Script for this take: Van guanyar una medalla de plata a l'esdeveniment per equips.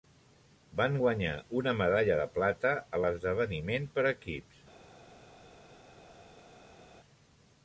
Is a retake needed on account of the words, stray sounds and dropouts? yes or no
no